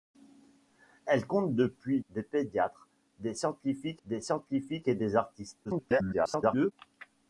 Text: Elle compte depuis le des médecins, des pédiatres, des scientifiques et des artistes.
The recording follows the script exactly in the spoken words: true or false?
false